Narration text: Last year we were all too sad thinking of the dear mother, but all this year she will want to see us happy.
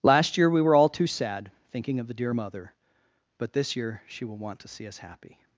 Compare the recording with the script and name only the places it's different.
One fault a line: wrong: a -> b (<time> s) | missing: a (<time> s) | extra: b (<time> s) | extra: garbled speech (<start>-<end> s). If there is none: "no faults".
missing: all (3.5 s)